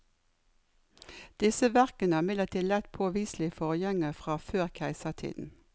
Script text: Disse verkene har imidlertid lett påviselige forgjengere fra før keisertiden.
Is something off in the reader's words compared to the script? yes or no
no